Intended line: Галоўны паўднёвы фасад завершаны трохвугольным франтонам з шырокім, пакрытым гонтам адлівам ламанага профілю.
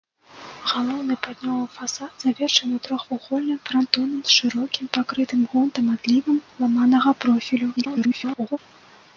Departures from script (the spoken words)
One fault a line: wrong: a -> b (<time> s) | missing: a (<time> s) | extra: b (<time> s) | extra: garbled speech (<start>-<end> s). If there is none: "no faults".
extra: garbled speech (7.8-8.6 s)